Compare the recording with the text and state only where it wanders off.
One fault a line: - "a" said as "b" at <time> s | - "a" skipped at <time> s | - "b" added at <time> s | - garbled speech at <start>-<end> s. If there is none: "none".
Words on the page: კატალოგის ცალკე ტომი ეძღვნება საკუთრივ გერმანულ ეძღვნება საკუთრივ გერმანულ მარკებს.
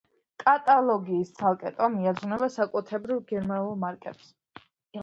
- "ეძღვნება საკუთრივ გერმანულ" skipped at 3.8 s